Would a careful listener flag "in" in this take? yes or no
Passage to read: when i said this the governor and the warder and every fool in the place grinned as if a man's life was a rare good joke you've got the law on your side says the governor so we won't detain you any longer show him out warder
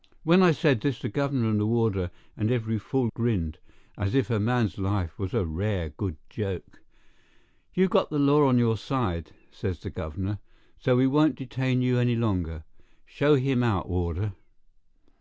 yes